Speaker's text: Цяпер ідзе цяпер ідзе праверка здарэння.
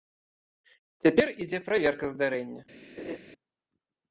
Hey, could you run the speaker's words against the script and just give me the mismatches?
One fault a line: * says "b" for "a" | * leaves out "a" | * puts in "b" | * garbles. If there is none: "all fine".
* leaves out "цяпер ідзе"